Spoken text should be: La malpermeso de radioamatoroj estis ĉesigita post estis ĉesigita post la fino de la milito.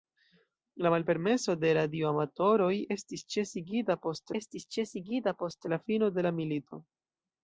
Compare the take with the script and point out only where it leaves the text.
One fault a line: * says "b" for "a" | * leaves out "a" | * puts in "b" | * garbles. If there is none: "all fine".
all fine